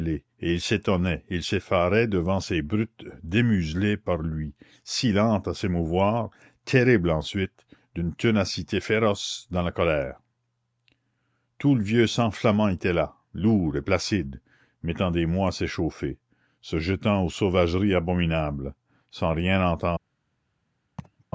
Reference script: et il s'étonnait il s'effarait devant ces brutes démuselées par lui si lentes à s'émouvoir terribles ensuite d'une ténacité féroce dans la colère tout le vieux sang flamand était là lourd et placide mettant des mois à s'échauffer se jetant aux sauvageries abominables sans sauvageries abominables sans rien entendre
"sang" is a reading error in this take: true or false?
false